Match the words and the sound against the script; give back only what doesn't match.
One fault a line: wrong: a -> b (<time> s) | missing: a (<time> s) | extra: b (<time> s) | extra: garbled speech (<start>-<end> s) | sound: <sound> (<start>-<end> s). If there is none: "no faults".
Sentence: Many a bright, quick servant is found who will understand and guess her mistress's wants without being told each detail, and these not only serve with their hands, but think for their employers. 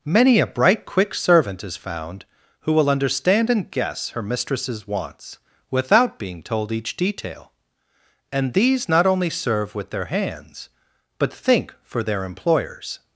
no faults